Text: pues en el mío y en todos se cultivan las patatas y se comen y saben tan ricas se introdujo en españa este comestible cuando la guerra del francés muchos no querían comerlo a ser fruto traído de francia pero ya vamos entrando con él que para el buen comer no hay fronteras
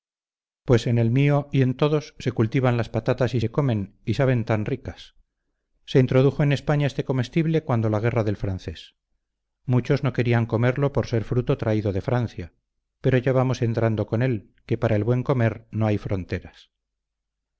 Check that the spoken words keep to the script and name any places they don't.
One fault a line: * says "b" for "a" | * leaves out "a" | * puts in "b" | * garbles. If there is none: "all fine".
* says "por" for "a"